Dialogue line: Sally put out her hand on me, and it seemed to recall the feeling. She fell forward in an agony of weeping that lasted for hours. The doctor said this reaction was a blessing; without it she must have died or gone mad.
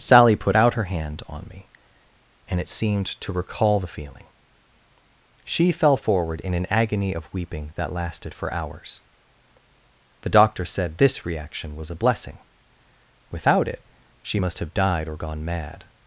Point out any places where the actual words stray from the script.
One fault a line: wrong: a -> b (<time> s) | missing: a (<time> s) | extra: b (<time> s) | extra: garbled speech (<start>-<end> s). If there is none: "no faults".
no faults